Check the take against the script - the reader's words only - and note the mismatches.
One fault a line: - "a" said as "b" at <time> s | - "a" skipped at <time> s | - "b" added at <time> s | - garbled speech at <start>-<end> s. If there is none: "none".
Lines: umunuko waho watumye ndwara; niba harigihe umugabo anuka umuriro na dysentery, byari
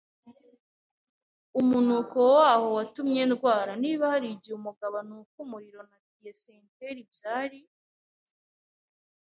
none